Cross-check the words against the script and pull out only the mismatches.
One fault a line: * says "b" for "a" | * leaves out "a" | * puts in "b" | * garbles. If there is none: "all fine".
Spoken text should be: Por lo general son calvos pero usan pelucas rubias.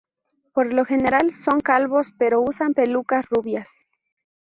all fine